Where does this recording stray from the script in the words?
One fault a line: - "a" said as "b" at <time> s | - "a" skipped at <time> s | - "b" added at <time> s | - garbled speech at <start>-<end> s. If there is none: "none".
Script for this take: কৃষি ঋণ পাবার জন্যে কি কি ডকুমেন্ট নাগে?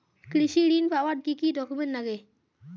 - "জন্যে" skipped at 1.2 s